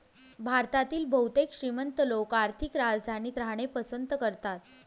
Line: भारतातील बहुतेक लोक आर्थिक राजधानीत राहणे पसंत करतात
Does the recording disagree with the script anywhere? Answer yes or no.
yes